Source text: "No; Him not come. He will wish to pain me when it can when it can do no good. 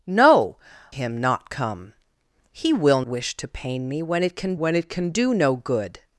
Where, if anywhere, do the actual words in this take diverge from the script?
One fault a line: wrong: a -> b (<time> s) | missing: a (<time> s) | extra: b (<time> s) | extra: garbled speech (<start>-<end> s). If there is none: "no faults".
no faults